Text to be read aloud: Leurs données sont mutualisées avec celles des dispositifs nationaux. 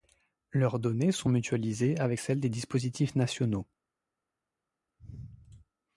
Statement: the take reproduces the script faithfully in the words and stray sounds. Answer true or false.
true